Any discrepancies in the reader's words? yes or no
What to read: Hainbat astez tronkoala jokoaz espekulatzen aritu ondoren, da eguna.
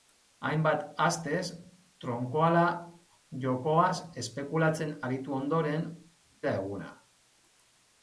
no